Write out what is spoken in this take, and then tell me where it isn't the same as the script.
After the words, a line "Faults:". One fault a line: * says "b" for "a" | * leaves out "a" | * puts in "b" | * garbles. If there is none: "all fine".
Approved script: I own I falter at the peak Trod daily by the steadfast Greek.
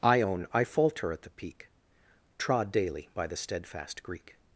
I own I falter at the peak Trod daily by the steadfast Greek.
Faults:
all fine